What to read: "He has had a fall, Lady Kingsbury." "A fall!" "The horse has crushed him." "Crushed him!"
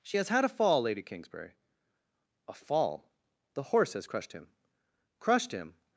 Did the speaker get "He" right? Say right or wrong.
wrong